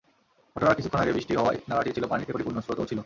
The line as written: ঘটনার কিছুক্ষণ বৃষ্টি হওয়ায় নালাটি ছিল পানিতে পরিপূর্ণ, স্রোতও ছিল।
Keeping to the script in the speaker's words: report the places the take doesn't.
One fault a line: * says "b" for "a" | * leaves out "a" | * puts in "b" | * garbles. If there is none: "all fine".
* puts in "আগে"